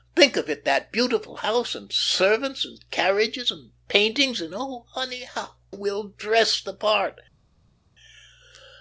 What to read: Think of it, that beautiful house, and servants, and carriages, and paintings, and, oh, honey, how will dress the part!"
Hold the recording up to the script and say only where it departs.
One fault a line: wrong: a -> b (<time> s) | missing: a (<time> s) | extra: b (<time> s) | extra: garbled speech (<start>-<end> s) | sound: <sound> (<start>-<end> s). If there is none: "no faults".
no faults